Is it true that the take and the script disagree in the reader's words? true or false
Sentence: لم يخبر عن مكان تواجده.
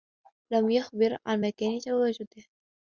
false